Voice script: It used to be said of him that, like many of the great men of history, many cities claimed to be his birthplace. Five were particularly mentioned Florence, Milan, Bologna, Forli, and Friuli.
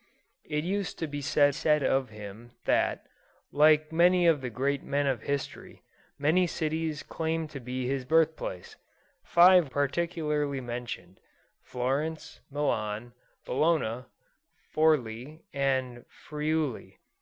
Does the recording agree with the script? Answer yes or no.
no